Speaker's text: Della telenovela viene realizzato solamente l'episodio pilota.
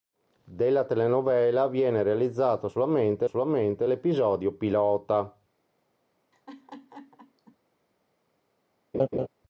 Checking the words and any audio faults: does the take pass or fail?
fail